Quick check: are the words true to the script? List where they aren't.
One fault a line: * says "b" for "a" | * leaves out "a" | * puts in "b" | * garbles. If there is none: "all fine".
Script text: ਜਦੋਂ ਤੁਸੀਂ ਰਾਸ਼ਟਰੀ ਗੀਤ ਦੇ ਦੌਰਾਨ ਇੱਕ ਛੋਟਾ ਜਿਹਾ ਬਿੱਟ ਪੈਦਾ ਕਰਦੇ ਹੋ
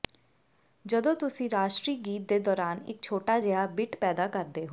all fine